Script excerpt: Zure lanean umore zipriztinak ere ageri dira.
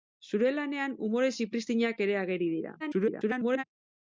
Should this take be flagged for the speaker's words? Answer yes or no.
yes